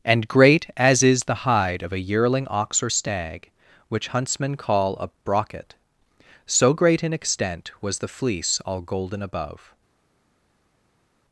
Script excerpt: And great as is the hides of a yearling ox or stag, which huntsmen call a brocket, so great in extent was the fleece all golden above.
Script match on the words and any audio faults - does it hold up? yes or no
no